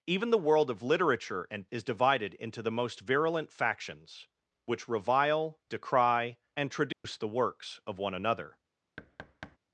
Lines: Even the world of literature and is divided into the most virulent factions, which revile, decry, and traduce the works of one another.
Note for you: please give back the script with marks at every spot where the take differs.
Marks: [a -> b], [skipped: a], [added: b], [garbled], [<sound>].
Even the world of literature and is divided into the most virulent factions, which revile, decry, and traduce [dropout] the works of one another. [thud]